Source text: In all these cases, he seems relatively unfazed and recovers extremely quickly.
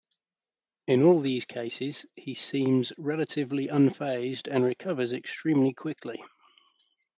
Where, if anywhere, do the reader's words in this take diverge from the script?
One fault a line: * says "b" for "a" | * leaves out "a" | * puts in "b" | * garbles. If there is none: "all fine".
all fine